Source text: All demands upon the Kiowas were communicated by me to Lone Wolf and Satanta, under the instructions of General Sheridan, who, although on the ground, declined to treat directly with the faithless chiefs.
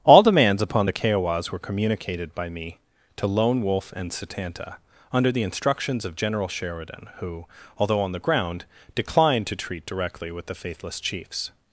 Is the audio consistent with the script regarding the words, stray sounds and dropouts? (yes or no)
yes